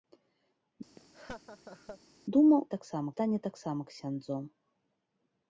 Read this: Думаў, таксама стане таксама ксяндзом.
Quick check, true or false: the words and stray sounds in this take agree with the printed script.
false